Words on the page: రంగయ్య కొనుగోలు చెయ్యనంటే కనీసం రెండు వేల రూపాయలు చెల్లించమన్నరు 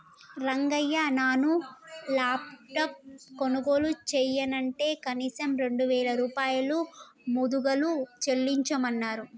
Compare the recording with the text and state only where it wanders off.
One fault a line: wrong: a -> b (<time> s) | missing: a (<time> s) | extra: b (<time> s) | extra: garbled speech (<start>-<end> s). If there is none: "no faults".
extra: నాను లాప్టాప్ (1.1 s)
extra: ముదుగలు (7.3 s)